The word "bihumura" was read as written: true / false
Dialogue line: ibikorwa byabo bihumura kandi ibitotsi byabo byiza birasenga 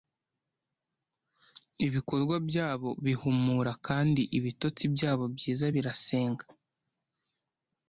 true